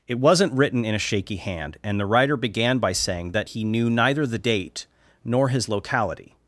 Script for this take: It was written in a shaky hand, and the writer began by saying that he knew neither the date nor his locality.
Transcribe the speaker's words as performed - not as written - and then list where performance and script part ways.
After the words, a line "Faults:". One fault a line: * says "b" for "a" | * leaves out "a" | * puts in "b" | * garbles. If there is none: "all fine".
It wasn't written in a shaky hand, and the writer began by saying that he knew neither the date nor his locality.
Faults:
* says "wasn't" for "was"